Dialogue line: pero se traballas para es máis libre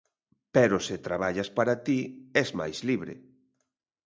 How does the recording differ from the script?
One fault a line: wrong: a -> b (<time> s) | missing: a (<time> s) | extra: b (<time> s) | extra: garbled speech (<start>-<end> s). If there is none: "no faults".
extra: ti (1.9 s)